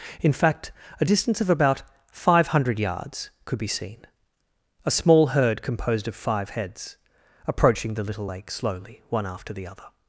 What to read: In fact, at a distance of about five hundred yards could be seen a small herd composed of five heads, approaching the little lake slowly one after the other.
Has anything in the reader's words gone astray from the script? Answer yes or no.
yes